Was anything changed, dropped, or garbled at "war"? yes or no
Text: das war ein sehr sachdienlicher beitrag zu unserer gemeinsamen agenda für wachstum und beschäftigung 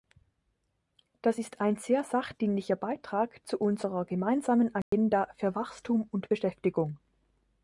yes